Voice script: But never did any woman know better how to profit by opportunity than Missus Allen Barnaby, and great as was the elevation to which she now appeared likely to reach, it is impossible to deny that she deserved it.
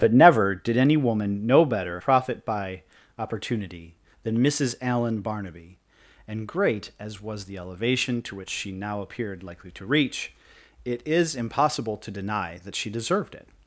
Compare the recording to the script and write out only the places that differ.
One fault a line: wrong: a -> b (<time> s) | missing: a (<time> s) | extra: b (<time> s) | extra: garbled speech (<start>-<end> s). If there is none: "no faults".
missing: how to (2.0 s)